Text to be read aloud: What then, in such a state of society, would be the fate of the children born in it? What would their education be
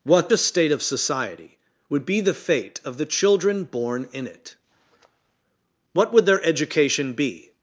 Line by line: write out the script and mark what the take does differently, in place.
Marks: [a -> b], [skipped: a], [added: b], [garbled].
What [skipped: then, in such] a state of society, would be the fate of the children born in it? What would their education be